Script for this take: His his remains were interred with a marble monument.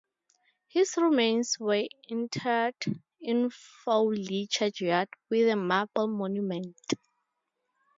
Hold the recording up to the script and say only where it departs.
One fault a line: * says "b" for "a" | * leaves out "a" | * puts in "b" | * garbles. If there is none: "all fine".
* leaves out "his"
* puts in "in Fawley churchyard"